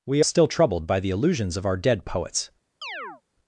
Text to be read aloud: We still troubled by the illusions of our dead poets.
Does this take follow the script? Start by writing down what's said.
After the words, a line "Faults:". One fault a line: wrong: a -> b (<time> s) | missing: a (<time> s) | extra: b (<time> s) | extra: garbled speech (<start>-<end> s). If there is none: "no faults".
We still troubled by the illusions of our dead poets.
Faults:
no faults